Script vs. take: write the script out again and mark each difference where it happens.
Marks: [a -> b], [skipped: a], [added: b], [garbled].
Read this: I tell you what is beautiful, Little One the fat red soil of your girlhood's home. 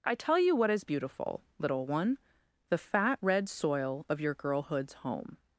I tell you what is beautiful, Little One the fat red soil of your girlhood's home.